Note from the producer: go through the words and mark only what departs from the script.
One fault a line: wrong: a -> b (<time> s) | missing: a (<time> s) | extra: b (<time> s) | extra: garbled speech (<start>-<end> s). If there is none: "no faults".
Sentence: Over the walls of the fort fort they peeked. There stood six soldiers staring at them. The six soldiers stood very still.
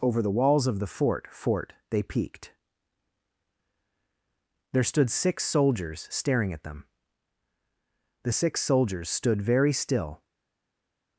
no faults